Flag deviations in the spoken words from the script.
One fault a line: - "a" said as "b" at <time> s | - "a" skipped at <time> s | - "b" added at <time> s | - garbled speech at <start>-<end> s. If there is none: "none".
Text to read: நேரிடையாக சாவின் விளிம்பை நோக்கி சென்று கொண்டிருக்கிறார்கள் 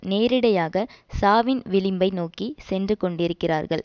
none